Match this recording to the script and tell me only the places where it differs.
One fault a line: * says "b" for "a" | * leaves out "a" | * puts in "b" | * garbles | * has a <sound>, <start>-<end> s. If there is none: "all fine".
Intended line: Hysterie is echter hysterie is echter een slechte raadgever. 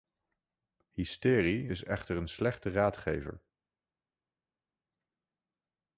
* leaves out "hysterie is echter"